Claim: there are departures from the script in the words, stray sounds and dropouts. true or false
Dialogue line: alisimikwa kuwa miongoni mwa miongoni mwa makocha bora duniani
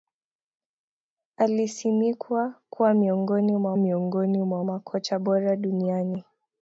false